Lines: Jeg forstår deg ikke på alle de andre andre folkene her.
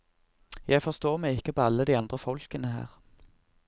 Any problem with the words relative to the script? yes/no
yes